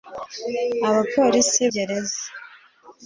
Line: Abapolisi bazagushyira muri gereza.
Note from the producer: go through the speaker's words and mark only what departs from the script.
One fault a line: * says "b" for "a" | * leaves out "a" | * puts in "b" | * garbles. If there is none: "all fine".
* leaves out "bazagushyira muri"